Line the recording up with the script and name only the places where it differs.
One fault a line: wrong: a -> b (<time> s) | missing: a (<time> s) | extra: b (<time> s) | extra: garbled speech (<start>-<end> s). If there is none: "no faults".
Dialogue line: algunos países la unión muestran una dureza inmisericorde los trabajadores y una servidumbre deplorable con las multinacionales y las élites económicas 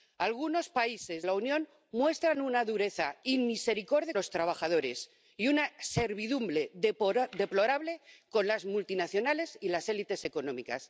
no faults